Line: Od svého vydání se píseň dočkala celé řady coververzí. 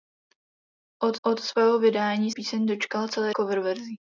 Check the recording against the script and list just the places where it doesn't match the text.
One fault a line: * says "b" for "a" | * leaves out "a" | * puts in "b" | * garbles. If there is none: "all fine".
* puts in "od"
* leaves out "se"
* leaves out "řady"